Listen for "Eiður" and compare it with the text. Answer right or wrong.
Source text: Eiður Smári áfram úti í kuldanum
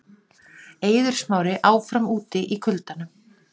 right